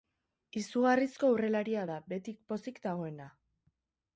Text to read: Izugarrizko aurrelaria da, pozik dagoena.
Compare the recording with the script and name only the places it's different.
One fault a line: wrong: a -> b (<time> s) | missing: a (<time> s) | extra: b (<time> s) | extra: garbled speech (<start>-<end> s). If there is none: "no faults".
extra: beti (2.1 s)